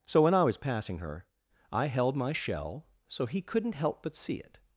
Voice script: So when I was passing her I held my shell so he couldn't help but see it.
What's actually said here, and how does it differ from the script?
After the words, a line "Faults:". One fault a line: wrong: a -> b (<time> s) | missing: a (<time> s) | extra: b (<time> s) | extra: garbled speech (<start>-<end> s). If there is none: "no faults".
So when I was passing her I held my shell so he couldn't help but see it.
Faults:
no faults